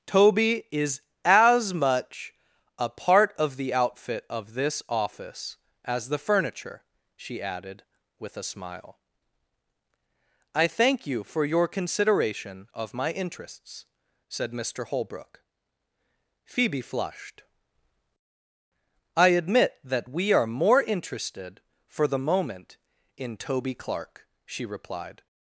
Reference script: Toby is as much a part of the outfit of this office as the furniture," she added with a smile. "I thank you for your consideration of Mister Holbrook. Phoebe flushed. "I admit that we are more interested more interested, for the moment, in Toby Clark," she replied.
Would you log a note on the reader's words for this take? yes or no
yes